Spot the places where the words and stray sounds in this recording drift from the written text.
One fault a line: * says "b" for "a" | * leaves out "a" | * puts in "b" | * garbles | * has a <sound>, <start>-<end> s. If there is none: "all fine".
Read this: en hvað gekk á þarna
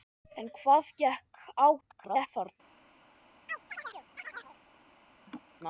* garbles
* has a chirp, 3.5-4.6 s
* has a laugh, 5.3-5.4 s